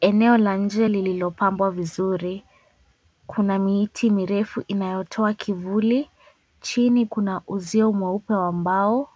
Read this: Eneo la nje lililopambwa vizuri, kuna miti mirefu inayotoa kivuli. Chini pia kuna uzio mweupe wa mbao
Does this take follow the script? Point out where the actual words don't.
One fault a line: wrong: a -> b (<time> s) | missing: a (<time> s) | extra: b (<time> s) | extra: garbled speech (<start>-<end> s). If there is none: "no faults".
missing: pia (7.1 s)